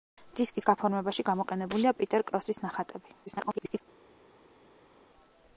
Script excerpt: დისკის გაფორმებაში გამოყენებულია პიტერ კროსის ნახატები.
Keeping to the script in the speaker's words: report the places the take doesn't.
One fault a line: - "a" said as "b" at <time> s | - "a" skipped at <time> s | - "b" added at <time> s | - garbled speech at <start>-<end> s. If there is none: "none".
- garbled speech at 3.3-3.8 s